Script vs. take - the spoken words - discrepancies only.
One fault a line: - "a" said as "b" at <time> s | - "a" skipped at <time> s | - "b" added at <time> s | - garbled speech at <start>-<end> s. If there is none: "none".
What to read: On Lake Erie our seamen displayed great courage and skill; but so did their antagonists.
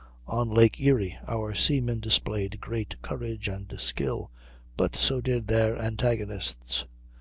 none